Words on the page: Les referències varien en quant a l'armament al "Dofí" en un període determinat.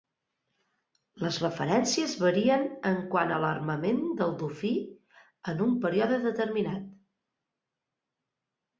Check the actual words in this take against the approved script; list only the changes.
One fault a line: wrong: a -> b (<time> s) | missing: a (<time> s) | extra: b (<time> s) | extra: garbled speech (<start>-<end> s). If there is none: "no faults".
wrong: al -> del (4.2 s)